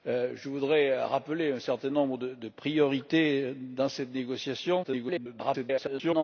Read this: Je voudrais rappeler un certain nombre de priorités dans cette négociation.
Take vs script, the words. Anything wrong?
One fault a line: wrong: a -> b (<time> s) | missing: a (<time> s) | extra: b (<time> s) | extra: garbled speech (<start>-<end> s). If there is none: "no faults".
extra: garbled speech (4.8-6.2 s)